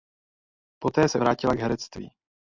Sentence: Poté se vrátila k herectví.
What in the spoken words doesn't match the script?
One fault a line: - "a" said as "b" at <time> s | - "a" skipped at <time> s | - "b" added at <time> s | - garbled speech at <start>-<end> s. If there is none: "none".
none